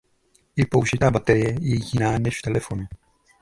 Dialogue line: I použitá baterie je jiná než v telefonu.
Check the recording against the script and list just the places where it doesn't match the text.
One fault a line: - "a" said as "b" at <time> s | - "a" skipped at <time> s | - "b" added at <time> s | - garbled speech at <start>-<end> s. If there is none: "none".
none